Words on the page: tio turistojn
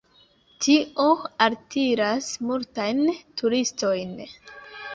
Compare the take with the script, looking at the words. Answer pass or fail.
fail